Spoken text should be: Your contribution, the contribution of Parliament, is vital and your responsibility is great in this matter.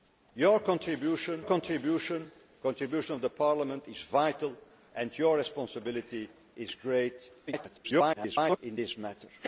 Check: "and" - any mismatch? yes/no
no